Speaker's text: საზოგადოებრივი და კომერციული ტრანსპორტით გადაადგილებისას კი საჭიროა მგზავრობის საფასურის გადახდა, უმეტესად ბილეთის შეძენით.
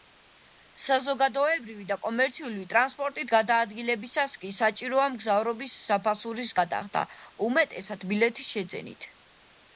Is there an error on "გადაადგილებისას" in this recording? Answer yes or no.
no